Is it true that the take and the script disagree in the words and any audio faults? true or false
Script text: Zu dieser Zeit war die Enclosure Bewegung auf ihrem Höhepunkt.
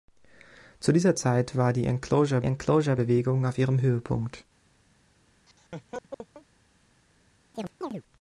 true